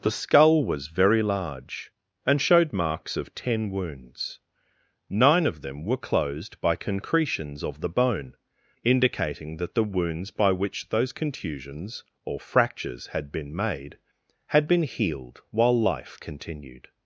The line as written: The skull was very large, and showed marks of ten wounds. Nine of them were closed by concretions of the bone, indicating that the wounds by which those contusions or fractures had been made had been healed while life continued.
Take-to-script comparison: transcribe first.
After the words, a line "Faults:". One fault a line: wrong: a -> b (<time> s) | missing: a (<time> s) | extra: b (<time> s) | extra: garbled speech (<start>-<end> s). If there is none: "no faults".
The skull was very large, and showed marks of ten wounds. Nine of them were closed by concretions of the bone, indicating that the wounds by which those contusions or fractures had been made had been healed while life continued.
Faults:
no faults